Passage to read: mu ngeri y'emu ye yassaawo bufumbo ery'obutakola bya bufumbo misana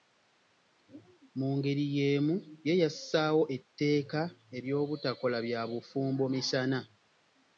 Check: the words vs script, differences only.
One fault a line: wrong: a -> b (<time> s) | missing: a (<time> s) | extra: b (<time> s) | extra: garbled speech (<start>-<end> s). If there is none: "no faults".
wrong: bufumbo -> etteeka (3.6 s)